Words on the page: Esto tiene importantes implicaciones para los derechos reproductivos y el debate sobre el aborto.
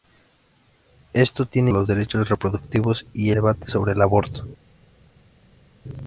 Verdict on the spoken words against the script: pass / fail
fail